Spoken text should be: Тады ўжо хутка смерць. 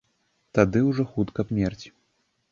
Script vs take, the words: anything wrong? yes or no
no